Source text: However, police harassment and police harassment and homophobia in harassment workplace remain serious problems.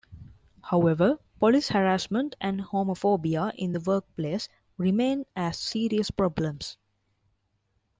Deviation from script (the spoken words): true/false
true